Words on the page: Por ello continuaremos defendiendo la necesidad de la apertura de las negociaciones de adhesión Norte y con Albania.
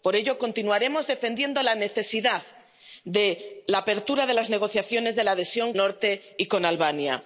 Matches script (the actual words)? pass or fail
pass